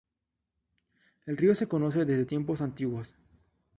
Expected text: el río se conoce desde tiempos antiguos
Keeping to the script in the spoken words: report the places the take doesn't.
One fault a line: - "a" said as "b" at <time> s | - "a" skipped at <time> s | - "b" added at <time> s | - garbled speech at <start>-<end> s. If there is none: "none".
none